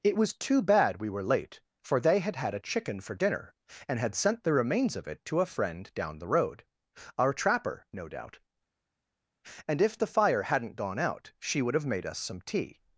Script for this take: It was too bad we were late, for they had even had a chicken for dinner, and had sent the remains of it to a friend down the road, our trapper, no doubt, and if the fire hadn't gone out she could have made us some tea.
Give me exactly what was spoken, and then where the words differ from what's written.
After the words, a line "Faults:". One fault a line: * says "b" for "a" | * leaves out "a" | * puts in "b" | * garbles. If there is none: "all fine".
It was too bad we were late, for they had had a chicken for dinner, and had sent the remains of it to a friend down the road, our trapper, no doubt, and if the fire hadn't gone out she would have made us some tea.
Faults:
* leaves out "even"
* says "would" for "could"